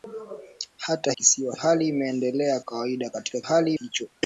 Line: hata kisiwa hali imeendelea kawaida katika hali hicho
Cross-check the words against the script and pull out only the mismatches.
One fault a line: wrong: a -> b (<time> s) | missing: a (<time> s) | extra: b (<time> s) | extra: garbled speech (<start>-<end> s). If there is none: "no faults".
no faults